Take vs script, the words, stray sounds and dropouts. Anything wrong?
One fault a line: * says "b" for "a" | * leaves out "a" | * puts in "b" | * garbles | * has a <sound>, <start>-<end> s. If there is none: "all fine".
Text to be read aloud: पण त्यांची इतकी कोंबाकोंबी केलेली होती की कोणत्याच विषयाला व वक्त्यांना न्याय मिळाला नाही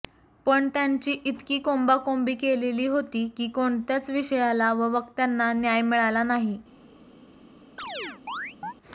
* has a chirp, 7.8-8.7 s